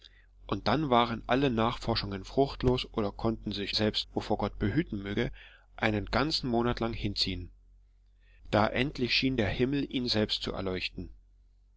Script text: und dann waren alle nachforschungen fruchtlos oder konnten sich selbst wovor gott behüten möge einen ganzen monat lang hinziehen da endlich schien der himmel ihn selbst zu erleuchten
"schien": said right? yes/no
yes